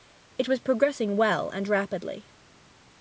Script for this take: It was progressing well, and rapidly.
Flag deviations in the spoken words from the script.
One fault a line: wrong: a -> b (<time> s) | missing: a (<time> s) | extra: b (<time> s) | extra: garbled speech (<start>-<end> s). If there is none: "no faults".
no faults